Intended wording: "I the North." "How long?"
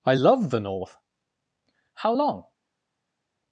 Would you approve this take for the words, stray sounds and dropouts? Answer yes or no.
no